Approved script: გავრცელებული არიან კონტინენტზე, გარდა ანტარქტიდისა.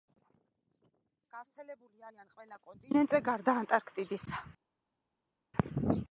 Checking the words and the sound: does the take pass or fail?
fail